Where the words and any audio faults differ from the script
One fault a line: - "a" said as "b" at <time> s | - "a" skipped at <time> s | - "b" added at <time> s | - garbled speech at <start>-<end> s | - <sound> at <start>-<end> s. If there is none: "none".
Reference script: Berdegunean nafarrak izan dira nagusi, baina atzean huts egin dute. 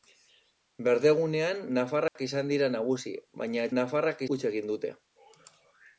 - dropout at 2.1-2.2 s
- "atzean" said as "nafarrak" at 3.8 s